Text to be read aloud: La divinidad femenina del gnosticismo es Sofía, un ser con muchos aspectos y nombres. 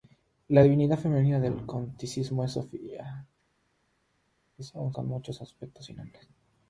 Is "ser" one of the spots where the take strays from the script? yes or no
yes